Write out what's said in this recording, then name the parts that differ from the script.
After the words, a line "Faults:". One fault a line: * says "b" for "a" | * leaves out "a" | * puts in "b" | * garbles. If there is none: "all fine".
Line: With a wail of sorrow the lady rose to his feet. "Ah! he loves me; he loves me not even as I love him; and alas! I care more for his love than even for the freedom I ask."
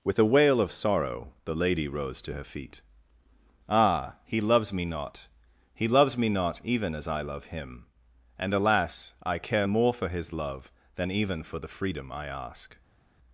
With a wail of sorrow the lady rose to her feet. "Ah! he loves me not; he loves me not even as I love him; and alas! I care more for his love than even for the freedom I ask."
Faults:
* says "her" for "his"
* puts in "not"